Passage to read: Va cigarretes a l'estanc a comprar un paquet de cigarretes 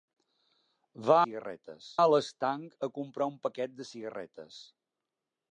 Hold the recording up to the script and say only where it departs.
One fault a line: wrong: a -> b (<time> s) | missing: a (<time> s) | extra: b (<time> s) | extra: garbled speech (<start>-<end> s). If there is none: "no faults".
no faults